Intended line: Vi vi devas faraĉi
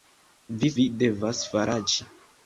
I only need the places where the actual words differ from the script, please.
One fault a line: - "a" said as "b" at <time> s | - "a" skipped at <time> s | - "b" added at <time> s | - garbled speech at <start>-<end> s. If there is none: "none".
none